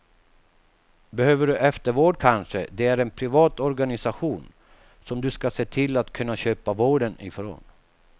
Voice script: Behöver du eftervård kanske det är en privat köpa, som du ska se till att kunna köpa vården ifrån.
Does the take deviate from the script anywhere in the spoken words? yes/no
yes